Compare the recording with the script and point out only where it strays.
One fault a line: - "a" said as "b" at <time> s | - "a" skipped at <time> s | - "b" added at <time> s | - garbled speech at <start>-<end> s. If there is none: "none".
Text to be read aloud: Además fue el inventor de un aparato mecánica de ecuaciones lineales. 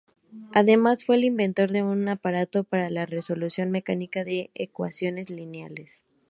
- "para la resolución" added at 2.6 s